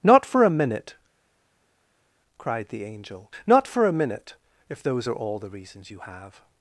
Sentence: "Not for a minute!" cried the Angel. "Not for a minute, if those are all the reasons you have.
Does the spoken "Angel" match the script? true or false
true